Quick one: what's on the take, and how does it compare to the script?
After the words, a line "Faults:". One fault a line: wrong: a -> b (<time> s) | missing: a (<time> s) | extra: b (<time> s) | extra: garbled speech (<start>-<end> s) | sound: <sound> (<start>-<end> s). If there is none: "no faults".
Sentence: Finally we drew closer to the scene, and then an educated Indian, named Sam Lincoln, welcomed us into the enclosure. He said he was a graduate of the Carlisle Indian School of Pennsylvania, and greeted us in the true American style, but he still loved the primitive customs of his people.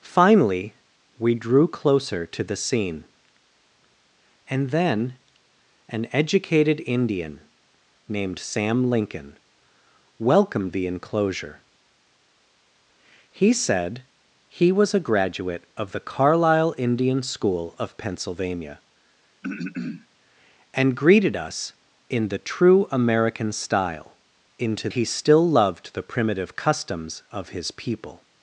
Finally we drew closer to the scene, and then an educated Indian, named Sam Lincoln, welcomed the enclosure. He said he was a graduate of the Carlisle Indian School of Pennsylvania, and greeted us in the true American style, into he still loved the primitive customs of his people.
Faults:
missing: us into (10.7 s)
sound: throat clearing (19.4-20.1 s)
wrong: but -> into (24.6 s)